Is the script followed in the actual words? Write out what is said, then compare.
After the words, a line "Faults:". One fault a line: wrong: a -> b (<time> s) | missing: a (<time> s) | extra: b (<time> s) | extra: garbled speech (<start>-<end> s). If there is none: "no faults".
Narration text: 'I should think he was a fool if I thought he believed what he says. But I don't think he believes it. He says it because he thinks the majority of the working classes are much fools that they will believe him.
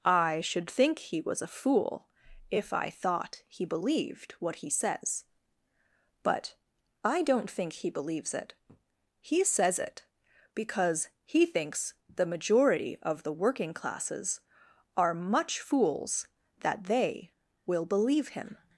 'I should think he was a fool if I thought he believed what he says. But I don't think he believes it. He says it because he thinks the majority of the working classes are much fools that they will believe him.
Faults:
no faults